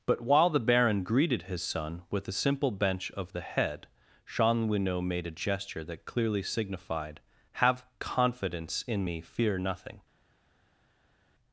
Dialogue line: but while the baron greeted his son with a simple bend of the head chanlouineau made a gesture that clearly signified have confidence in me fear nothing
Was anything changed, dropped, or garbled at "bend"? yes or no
yes